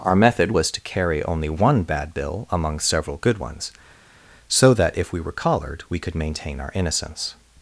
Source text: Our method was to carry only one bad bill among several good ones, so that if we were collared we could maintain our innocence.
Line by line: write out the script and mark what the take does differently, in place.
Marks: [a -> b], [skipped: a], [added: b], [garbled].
Our method was to carry only one bad bill among several good ones, so that if we were collared we could maintain our innocence.